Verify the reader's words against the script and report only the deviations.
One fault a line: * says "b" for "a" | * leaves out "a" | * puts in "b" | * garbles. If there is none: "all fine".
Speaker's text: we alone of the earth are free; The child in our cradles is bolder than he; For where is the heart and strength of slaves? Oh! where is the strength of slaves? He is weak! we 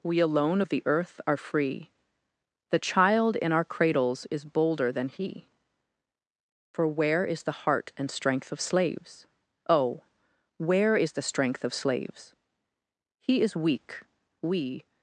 all fine